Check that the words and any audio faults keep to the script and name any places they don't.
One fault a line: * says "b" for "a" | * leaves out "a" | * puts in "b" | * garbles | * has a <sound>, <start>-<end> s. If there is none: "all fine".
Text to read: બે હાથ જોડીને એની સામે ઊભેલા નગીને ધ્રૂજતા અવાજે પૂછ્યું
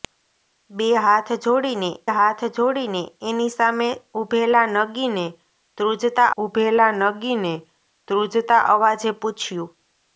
* puts in "હાથ જોડીને"
* puts in "ઊભેલા નગીને ધ્રૂજતા"